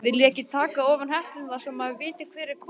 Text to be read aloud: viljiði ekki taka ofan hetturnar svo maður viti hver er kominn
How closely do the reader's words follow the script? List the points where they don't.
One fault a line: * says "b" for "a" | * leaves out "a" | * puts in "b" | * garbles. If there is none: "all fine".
all fine